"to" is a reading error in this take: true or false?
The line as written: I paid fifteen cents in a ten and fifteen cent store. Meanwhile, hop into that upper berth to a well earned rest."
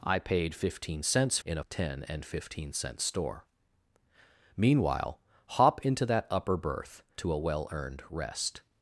false